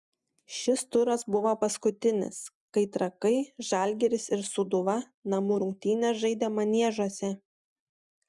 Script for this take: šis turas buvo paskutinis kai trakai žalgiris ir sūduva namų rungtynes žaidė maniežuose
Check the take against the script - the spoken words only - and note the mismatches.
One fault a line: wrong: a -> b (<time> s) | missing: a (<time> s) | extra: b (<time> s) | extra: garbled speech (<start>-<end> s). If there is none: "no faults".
no faults